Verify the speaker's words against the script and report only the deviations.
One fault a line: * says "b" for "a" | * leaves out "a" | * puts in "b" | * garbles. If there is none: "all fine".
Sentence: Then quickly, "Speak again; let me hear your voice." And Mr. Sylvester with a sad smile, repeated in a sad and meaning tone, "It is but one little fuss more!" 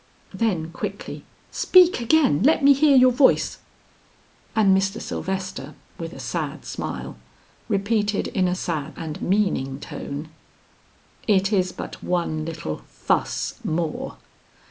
all fine